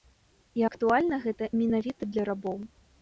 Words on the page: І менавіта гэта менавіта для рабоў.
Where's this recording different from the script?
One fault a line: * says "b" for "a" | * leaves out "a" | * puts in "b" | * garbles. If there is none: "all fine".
* says "актуальна" for "менавіта"